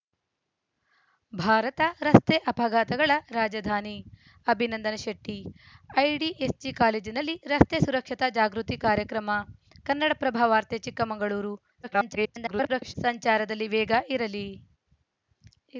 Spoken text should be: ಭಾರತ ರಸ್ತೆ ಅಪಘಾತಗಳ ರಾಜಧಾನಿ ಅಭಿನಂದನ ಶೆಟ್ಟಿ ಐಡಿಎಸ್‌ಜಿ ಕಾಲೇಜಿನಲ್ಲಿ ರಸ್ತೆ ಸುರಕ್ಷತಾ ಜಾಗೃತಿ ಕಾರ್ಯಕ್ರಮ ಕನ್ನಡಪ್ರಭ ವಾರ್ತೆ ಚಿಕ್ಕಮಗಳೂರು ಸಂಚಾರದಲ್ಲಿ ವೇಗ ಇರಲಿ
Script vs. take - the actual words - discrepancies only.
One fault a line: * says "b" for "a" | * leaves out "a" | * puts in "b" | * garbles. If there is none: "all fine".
* garbles